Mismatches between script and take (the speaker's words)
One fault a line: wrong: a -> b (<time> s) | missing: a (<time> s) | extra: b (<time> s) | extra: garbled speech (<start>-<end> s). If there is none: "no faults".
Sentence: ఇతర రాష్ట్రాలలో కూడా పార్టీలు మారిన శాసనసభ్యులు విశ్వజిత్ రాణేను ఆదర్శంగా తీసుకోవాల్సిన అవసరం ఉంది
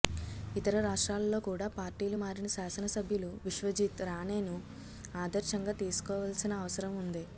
no faults